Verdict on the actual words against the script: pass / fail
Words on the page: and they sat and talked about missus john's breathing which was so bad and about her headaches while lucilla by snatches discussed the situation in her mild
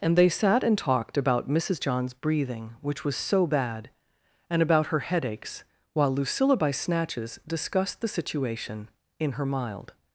pass